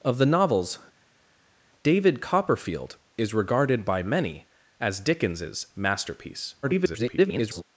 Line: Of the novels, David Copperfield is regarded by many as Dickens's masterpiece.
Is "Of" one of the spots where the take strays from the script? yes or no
no